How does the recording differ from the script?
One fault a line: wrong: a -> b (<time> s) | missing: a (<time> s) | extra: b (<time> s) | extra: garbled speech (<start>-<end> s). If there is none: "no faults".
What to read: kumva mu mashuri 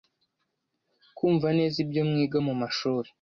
extra: neza ibyo mwiga (1.6 s)